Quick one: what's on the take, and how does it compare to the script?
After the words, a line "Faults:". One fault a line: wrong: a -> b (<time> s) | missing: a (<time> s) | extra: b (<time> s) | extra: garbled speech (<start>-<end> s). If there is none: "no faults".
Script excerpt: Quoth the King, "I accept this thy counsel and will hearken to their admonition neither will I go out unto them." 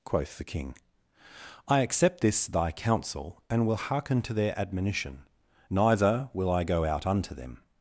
Quoth the King, "I accept this thy counsel and will hearken to their admonition neither will I go out unto them."
Faults:
no faults